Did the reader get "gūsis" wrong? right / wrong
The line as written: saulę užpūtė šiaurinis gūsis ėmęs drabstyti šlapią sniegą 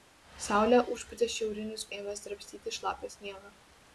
wrong